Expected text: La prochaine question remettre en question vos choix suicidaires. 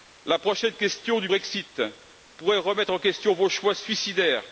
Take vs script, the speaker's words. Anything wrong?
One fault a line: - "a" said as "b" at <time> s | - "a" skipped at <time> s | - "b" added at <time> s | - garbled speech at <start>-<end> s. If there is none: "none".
- "du Brexit pourrait" added at 1.2 s